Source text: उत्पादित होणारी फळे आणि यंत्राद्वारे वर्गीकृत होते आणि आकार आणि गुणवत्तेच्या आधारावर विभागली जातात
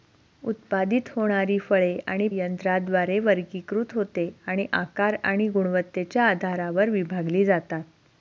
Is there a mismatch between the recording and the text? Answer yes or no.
no